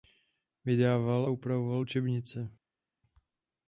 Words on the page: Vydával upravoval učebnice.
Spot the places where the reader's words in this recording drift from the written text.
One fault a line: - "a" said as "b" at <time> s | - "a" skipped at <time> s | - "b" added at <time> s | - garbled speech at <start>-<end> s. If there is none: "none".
none